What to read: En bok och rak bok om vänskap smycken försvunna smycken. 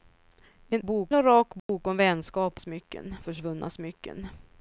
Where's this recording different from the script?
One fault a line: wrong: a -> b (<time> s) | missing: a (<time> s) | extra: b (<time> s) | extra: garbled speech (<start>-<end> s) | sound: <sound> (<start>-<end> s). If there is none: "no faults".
sound: dropout (1.6-1.7 s)